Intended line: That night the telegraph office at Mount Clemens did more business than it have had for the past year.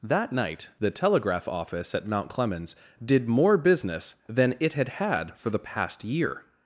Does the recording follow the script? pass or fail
fail